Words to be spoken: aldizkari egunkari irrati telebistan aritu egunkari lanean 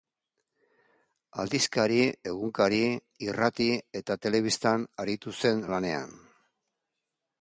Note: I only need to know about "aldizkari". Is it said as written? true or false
true